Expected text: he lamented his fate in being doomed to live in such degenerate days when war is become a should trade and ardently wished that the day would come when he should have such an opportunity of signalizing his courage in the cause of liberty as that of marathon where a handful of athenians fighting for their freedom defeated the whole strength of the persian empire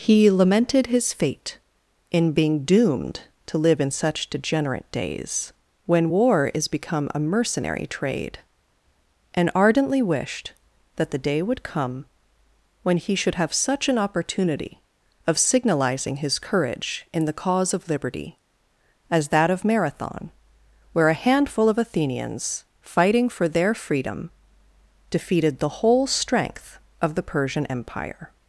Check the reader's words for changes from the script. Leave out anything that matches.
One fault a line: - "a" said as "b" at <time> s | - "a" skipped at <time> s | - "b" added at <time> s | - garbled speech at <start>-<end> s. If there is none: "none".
- "should" said as "mercenary" at 7.2 s